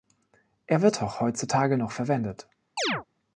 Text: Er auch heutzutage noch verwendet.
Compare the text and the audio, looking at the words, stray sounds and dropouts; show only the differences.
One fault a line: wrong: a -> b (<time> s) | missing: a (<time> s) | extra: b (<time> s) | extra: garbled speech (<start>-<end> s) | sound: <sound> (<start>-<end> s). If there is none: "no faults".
extra: wird (0.8 s)
sound: chirp (2.8-3.0 s)